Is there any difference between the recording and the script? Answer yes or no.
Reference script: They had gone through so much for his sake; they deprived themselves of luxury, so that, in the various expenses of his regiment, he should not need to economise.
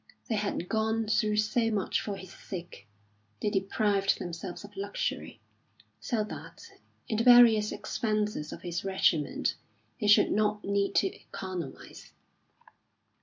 no